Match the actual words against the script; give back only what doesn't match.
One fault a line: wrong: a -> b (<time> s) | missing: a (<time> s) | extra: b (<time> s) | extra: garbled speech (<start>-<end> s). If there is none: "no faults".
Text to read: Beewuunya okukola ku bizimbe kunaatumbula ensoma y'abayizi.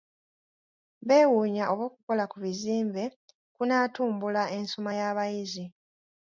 extra: oba (1.7 s)